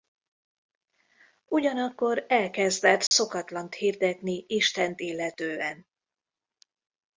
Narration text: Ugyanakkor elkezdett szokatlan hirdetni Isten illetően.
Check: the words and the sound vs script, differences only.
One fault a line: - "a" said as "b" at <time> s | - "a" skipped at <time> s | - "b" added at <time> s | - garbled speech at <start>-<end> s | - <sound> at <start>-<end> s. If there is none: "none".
- dropout at 3.1-3.1 s